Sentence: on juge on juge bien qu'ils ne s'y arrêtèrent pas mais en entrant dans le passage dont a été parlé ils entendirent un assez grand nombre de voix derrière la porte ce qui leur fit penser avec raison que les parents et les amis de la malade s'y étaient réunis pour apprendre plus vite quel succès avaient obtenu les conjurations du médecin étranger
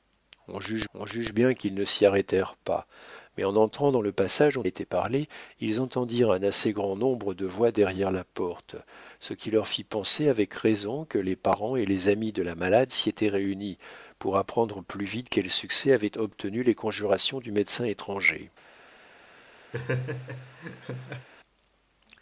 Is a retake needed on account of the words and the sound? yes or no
yes